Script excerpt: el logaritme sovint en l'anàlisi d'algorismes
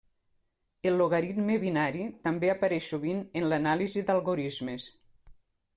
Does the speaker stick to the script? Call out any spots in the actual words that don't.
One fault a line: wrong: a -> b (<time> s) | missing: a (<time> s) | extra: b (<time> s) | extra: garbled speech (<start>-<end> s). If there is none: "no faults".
extra: binari també apareix (1.6 s)